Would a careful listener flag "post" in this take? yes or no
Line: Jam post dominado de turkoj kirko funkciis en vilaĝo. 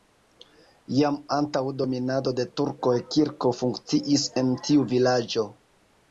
yes